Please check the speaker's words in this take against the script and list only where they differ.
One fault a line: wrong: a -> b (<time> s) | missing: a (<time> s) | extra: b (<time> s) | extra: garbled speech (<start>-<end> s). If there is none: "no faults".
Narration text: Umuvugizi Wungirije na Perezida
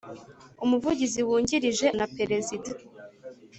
no faults